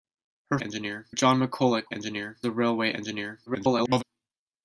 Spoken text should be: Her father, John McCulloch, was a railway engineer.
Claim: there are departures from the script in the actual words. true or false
true